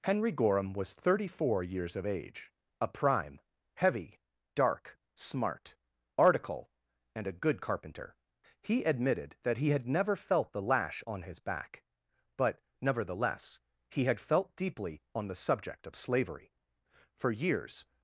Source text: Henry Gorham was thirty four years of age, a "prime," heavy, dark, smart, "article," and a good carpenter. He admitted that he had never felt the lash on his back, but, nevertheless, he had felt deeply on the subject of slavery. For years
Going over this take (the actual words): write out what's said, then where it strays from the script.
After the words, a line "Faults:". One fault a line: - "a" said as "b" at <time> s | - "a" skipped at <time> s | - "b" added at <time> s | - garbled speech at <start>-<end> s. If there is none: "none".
Henry Gorham was thirty four years of age, a "prime," heavy, dark, smart, "article," and a good carpenter. He admitted that he had never felt the lash on his back, but, nevertheless, he had felt deeply on the subject of slavery. For years
Faults:
none